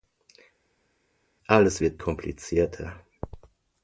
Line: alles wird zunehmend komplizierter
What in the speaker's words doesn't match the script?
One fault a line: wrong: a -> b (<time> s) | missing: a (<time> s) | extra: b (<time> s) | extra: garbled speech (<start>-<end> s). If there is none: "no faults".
missing: zunehmend (2.0 s)